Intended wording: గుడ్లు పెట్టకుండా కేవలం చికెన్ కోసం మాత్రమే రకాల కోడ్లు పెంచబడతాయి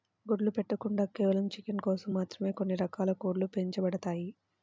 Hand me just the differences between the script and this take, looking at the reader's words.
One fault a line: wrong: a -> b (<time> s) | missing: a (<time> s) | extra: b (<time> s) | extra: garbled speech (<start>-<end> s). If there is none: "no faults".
extra: కొన్ని (2.6 s)